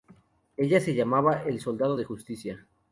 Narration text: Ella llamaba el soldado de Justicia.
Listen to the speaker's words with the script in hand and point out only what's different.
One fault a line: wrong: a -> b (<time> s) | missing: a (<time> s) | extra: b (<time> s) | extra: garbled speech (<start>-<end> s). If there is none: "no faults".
extra: se (0.8 s)